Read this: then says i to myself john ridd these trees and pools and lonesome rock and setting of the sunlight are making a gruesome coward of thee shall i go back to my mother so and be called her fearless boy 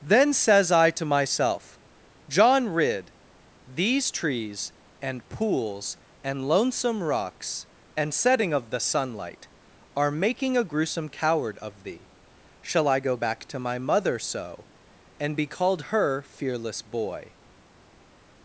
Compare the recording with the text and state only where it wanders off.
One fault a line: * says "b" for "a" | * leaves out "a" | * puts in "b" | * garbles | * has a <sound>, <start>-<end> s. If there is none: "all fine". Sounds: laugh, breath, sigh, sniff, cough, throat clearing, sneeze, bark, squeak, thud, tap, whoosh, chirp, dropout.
* says "rocks" for "rock"